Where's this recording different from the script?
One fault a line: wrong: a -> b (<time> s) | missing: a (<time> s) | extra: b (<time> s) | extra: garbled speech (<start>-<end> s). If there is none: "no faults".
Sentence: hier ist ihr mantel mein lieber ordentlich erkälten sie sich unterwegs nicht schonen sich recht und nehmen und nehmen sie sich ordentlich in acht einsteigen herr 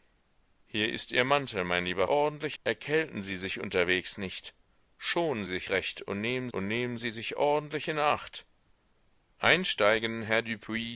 no faults